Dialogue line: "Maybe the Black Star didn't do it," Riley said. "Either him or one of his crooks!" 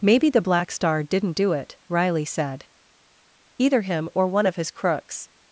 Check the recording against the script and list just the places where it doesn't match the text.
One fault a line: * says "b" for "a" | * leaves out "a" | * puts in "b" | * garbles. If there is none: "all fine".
all fine